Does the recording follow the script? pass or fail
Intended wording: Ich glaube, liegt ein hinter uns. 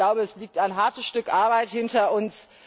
fail